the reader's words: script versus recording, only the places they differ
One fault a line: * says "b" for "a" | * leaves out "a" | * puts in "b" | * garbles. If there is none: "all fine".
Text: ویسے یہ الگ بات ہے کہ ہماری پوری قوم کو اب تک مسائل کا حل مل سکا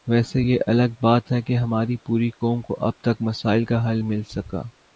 all fine